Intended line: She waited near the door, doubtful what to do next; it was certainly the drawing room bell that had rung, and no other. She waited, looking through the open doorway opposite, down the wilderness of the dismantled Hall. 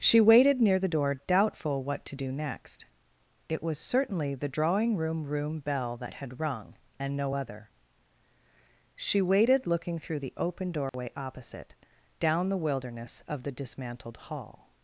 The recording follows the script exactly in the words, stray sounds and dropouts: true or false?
false